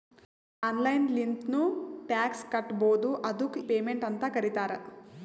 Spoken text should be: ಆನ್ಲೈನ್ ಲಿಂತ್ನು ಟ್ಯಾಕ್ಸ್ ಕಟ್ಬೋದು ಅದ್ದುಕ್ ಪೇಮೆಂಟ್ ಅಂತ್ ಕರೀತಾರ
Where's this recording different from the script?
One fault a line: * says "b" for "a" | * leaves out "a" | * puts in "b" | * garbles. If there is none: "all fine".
all fine